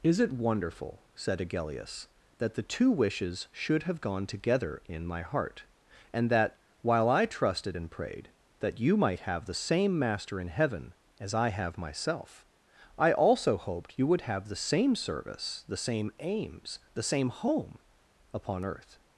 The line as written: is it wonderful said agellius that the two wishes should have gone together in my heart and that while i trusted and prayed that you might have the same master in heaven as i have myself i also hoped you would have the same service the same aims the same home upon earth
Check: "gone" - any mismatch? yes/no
no